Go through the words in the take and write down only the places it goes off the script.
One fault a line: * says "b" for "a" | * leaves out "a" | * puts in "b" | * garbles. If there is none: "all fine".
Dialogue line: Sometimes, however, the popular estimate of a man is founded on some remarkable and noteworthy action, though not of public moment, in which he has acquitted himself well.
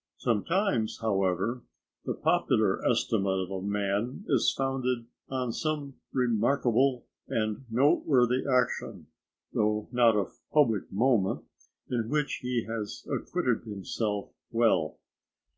all fine